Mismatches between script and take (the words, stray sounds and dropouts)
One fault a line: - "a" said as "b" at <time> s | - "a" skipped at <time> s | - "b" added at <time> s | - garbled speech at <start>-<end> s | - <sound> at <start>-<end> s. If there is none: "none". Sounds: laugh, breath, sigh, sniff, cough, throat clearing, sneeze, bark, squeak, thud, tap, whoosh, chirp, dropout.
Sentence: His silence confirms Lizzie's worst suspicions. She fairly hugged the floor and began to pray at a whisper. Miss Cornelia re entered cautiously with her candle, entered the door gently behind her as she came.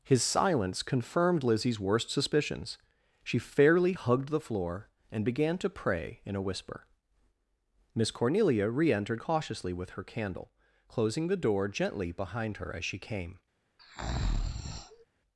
- "confirms" said as "confirmed" at 0.8 s
- "at" said as "in" at 6.2 s
- "entered" said as "closing" at 10.9 s
- breath at 13.8-15.1 s